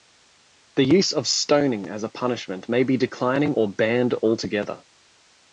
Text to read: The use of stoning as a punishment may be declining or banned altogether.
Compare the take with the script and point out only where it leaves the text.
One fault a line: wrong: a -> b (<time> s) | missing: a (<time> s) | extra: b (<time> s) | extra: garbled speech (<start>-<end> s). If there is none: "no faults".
no faults